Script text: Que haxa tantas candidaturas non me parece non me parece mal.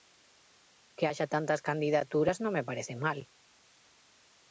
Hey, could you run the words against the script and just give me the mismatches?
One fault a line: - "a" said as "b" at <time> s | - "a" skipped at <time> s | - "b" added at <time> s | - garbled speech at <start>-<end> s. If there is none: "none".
- "non me parece" skipped at 2.9 s